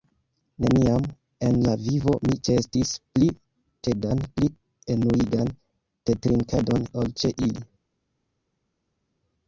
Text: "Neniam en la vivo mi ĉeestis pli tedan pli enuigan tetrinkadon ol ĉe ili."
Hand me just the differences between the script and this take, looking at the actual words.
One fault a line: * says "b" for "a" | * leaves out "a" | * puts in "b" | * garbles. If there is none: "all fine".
all fine